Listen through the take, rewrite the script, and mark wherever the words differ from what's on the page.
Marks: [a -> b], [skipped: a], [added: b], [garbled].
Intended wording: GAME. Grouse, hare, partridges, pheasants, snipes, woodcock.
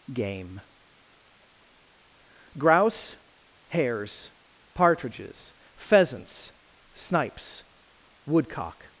GAME. Grouse, [hare, -> hares] partridges, pheasants, snipes, woodcock.